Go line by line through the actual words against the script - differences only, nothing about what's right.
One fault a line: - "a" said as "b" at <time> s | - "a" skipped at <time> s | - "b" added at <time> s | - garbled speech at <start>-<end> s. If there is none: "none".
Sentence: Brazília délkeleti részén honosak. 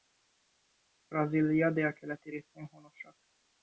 none